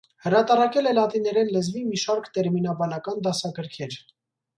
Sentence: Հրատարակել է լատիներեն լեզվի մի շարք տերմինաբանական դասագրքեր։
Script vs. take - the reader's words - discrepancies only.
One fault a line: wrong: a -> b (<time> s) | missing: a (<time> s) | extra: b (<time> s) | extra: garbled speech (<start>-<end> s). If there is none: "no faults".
no faults